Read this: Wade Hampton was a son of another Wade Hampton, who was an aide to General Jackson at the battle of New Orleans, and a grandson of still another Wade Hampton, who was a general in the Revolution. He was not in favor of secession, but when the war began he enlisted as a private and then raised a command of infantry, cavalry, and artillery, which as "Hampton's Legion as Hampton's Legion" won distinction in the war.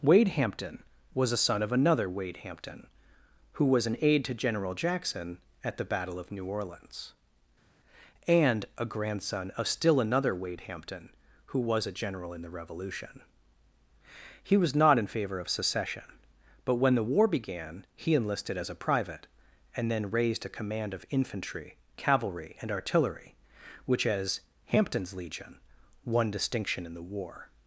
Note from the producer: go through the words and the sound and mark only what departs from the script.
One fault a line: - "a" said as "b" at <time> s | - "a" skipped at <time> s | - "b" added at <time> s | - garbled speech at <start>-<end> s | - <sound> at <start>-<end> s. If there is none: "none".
- "as Hampton's Legion" skipped at 25.6 s